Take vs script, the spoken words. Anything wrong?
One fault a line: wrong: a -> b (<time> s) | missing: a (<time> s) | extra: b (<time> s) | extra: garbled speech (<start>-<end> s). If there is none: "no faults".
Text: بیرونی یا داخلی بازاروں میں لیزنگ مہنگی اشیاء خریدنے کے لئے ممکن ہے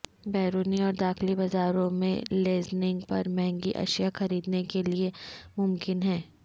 wrong: یا -> اور (0.8 s)
extra: پر (3.1 s)